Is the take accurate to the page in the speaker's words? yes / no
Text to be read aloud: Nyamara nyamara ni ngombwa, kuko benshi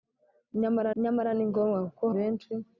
yes